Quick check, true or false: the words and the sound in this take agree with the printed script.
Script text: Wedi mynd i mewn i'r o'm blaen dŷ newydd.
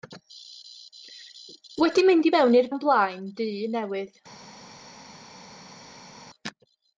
true